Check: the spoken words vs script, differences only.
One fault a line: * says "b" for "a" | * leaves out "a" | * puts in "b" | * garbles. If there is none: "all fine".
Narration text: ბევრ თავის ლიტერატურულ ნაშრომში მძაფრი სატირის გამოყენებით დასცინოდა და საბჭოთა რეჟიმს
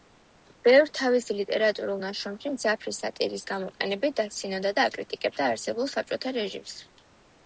* puts in "აკრიტიკებდა არსებულ"